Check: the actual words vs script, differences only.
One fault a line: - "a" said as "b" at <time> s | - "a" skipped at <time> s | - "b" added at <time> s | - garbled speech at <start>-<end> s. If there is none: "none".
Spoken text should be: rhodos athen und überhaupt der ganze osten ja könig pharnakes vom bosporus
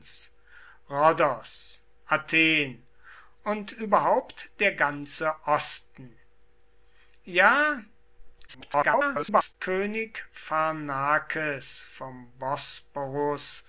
- garbled speech at 8.5-9.5 s